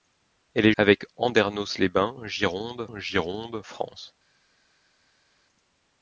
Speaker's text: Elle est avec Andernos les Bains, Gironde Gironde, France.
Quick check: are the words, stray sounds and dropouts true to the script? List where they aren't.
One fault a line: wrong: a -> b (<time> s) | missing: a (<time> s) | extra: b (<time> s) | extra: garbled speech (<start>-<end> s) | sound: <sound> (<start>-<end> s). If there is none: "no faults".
no faults